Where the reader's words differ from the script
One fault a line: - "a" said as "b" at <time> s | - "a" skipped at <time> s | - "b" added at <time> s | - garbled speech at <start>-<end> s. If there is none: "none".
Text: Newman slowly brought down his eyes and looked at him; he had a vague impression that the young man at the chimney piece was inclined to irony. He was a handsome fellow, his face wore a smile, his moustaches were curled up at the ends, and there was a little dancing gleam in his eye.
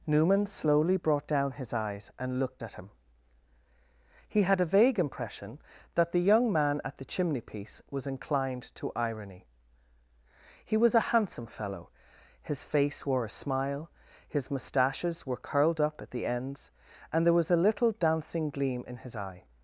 none